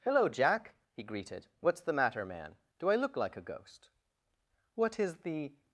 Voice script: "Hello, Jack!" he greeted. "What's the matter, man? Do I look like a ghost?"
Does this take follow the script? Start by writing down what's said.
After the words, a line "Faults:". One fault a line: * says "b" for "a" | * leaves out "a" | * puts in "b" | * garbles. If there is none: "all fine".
"Hello, Jack!" he greeted. "What's the matter, man? Do I look like a ghost?" "What is the
Faults:
* puts in "What is the"